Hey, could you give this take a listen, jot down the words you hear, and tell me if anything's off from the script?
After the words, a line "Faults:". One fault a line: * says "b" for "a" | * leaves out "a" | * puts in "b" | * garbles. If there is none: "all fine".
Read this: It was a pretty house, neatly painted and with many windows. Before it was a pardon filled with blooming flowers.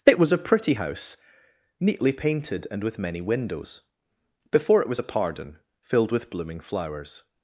It was a pretty house, neatly painted and with many windows. Before it was a pardon filled with blooming flowers.
Faults:
all fine